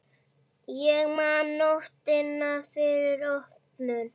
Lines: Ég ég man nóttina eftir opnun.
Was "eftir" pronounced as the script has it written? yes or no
no